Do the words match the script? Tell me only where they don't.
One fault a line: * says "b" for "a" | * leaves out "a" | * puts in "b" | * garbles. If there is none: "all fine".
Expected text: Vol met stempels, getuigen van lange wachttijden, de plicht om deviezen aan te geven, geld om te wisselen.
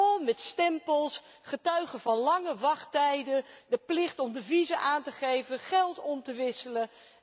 all fine